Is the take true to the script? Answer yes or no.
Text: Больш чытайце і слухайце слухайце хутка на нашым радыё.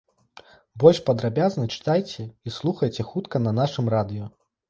no